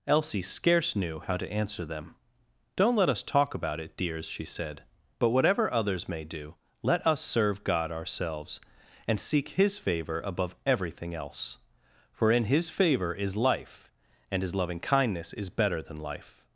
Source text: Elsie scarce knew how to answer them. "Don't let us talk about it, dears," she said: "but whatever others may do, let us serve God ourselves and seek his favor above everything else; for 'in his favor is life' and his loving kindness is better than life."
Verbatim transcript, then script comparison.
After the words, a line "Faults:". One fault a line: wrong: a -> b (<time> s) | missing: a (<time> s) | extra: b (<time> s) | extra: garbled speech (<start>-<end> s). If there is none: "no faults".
Elsie scarce knew how to answer them. "Don't let us talk about it, dears," she said: "but whatever others may do, let us serve God ourselves and seek his favor above everything else; for 'in his favor is life' and his loving kindness is better than life."
Faults:
no faults